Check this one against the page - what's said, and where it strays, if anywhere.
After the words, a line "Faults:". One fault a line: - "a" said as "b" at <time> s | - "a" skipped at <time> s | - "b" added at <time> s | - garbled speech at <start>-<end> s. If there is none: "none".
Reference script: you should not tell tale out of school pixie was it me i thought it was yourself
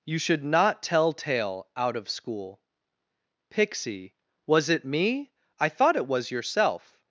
you should not tell tale out of school pixie was it me i thought it was yourself
Faults:
none